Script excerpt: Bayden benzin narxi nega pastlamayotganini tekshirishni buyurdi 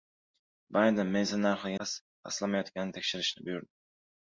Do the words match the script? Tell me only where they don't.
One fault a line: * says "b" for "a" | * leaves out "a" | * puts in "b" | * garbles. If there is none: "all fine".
* leaves out "nega"